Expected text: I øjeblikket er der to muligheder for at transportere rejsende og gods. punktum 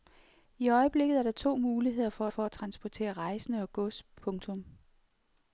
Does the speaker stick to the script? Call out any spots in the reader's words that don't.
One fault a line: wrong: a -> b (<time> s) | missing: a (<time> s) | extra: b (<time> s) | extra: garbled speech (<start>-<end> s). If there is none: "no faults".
extra: for (2.3 s)